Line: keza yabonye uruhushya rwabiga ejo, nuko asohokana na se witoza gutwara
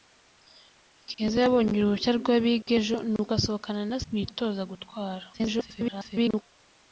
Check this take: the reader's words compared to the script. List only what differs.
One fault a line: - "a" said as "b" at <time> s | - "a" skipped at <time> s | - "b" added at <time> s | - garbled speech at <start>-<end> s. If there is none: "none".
- "se" skipped at 4.0 s
- garbled speech at 5.3-6.4 s